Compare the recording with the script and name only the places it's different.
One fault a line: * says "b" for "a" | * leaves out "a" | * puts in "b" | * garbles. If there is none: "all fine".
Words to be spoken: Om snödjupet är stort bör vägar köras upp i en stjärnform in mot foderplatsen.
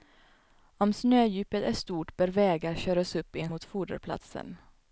* leaves out "stjärnform in"